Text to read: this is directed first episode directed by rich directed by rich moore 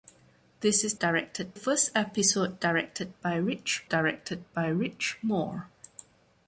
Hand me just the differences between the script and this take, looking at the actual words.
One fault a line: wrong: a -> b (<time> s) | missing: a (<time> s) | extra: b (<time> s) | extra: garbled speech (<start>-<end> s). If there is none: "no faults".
no faults